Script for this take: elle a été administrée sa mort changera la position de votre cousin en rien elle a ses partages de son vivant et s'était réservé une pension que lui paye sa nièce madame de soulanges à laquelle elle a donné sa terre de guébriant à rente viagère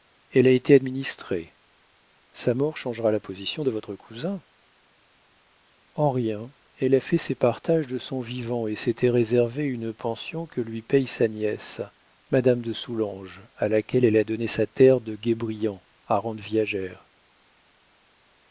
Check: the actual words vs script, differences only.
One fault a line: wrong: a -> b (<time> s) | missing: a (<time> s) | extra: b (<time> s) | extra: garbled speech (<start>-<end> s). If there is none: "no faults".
extra: fait (7.0 s)